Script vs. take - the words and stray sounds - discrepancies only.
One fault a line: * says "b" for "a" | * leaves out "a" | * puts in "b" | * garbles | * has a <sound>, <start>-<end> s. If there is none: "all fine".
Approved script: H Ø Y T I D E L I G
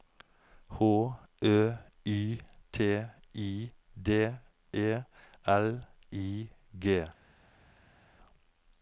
all fine